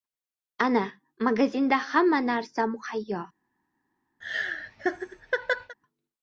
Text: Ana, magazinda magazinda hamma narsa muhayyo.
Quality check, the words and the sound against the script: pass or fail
fail